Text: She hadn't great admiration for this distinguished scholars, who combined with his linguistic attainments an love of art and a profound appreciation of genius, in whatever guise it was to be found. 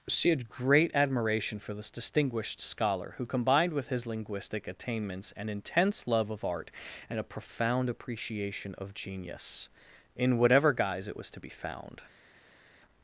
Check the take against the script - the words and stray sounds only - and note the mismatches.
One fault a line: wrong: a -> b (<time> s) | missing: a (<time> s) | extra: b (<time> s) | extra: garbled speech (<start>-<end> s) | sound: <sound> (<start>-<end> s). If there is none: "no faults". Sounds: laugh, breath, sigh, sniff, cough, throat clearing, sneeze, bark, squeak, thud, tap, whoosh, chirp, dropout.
wrong: hadn't -> had (0.3 s)
wrong: scholars -> scholar (2.6 s)
extra: intense (5.5 s)